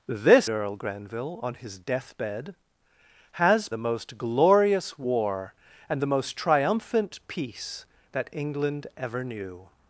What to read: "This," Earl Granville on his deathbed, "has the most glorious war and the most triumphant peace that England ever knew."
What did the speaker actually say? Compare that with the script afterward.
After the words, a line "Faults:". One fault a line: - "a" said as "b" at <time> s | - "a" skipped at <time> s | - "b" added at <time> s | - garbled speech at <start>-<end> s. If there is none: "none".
"This," Earl Granville on his deathbed, "has the most glorious war and the most triumphant peace that England ever knew."
Faults:
none